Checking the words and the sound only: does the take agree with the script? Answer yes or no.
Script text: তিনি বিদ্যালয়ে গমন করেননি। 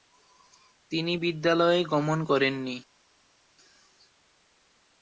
yes